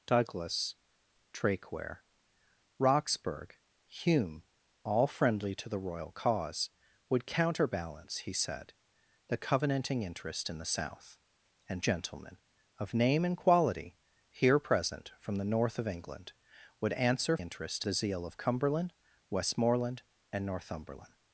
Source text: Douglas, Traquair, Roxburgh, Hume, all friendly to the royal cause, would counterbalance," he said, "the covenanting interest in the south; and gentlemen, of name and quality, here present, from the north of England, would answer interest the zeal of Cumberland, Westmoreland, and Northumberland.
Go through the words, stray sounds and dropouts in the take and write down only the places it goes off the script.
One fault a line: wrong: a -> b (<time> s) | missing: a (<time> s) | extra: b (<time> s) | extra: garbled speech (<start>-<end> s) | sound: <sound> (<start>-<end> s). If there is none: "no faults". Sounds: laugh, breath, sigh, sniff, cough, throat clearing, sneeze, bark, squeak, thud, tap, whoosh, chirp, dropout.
no faults